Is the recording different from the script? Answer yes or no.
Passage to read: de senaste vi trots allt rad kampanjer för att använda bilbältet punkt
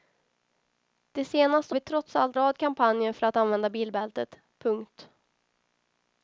no